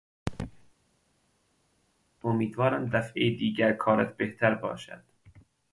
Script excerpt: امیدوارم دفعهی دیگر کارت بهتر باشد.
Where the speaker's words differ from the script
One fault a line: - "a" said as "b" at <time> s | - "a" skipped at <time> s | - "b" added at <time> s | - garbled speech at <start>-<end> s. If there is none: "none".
none